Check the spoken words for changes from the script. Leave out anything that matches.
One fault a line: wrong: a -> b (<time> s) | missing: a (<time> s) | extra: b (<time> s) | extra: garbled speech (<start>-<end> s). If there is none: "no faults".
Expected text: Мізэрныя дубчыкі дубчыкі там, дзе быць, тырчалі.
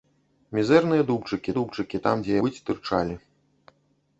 no faults